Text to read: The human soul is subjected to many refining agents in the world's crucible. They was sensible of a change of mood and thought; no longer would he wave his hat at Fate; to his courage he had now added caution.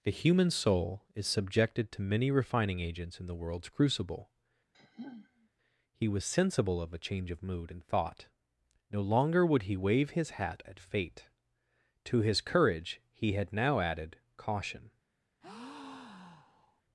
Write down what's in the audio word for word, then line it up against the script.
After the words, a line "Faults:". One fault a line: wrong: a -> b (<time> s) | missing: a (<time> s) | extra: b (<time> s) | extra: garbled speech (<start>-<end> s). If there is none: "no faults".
The human soul is subjected to many refining agents in the world's crucible. He was sensible of a change of mood and thought; no longer would he wave his hat at Fate; to his courage he had now added caution.
Faults:
wrong: They -> He (5.9 s)